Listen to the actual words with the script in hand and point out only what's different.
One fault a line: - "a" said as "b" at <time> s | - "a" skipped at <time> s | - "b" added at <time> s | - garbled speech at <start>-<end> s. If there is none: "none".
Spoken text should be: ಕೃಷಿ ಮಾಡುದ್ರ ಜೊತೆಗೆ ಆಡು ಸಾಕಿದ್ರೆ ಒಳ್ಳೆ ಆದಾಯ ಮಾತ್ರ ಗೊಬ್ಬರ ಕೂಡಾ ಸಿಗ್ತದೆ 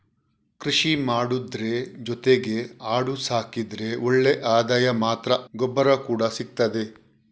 none